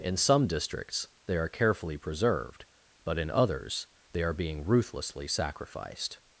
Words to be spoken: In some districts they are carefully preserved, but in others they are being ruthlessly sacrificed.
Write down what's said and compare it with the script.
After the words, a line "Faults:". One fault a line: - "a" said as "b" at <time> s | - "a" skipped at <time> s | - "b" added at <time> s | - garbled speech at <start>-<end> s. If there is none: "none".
In some districts they are carefully preserved, but in others they are being ruthlessly sacrificed.
Faults:
none